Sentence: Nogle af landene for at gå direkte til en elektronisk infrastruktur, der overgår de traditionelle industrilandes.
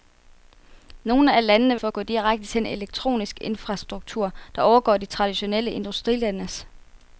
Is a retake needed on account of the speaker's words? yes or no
no